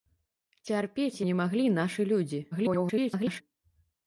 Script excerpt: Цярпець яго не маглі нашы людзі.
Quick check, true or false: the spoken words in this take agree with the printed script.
false